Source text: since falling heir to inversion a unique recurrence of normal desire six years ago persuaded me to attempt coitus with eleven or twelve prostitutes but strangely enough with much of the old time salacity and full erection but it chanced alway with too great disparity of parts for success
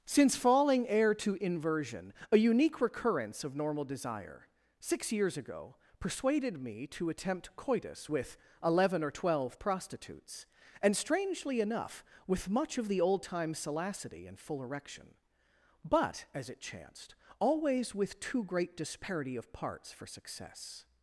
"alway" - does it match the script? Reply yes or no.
no